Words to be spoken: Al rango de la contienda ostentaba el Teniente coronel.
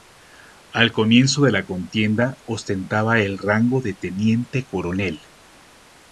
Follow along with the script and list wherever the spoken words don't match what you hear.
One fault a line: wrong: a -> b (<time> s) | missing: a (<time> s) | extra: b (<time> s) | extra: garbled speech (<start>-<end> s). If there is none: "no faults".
wrong: rango -> comienzo (0.9 s)
extra: rango de (3.4 s)